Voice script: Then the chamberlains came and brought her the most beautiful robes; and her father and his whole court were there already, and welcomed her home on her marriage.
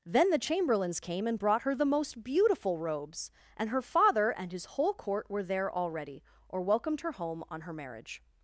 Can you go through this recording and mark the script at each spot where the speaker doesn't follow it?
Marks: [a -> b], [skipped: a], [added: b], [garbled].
Then the chamberlains came and brought her the most beautiful robes; and her father and his whole court were there already, [and -> or] welcomed her home on her marriage.